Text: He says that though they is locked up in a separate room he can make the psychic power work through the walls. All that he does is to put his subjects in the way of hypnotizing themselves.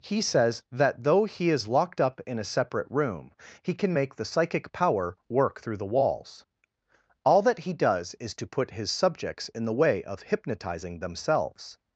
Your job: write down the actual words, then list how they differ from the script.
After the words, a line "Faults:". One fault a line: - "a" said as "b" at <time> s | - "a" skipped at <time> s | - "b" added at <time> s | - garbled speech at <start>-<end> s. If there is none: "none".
He says that though he is locked up in a separate room he can make the psychic power work through the walls. All that he does is to put his subjects in the way of hypnotizing themselves.
Faults:
- "they" said as "he" at 1.2 s